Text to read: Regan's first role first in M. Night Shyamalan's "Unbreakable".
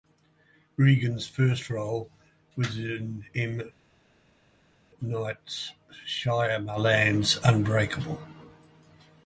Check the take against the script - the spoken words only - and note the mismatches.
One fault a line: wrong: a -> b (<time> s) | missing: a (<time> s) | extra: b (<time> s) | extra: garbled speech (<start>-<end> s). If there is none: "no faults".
wrong: first -> was (2.6 s)